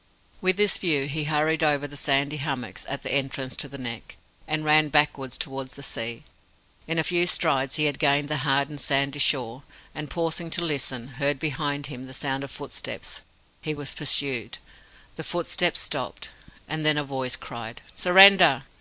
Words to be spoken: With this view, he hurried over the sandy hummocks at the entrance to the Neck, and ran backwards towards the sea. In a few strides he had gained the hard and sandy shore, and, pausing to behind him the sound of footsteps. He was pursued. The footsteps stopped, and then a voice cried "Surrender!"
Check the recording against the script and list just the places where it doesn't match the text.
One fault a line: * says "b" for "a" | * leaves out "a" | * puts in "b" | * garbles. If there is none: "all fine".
* puts in "listen heard"